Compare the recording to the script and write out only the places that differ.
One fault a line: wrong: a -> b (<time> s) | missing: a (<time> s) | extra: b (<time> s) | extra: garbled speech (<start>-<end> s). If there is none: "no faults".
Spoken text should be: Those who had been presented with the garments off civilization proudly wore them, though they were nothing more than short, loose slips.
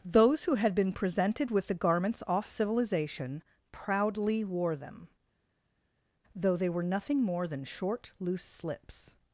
no faults